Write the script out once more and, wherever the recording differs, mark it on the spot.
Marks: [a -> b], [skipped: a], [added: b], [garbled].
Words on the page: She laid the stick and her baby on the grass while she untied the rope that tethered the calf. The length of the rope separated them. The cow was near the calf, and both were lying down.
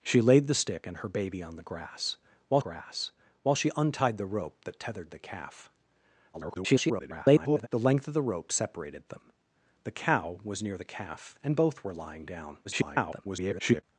She laid the stick and her baby on the grass while [added: grass while] she untied the rope that tethered the calf. [garbled] The length of the rope separated them. The cow was near the calf, and both were lying down. [garbled]